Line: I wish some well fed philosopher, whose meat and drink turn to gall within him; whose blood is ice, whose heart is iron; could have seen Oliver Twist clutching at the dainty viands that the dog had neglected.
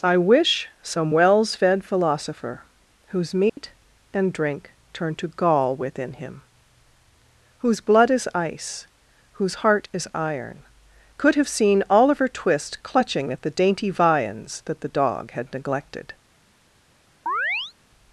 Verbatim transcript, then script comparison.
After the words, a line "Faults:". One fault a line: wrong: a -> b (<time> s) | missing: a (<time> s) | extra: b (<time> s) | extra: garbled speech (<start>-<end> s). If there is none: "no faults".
I wish some wells fed philosopher, whose meat and drink turn to gall within him; whose blood is ice, whose heart is iron; could have seen Oliver Twist clutching at the dainty viands that the dog had neglected.
Faults:
wrong: well -> wells (1.1 s)